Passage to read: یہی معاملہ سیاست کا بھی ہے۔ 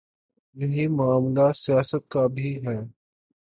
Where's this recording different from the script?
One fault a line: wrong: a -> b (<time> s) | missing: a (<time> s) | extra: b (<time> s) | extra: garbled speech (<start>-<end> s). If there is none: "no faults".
no faults